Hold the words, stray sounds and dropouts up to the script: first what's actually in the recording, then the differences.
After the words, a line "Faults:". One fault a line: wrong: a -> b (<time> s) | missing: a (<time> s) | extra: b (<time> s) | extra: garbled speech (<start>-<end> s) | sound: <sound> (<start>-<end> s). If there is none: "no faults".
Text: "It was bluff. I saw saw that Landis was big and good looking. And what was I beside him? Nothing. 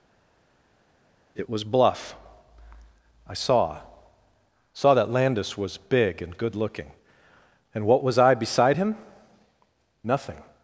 "It was bluff. I saw saw that Landis was big and good looking. And what was I beside him? Nothing.
Faults:
no faults